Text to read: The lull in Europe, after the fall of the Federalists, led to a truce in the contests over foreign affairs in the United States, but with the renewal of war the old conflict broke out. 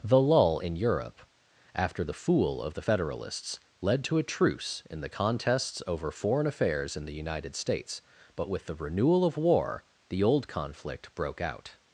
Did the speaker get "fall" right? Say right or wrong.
wrong